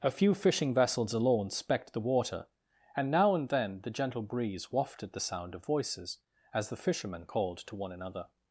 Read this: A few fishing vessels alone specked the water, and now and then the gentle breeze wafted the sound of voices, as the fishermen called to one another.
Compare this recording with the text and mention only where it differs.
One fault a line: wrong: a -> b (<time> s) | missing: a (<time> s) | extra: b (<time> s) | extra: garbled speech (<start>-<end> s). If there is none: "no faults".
no faults